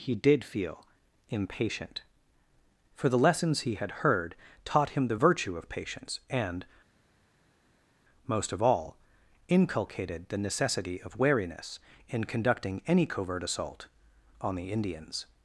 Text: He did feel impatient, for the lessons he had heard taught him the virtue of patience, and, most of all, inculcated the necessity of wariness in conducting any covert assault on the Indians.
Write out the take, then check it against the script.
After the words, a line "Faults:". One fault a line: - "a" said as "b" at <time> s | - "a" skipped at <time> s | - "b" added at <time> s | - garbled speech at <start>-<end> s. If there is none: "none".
He did feel impatient, for the lessons he had heard taught him the virtue of patience, and, most of all, inculcated the necessity of wariness in conducting any covert assault on the Indians.
Faults:
none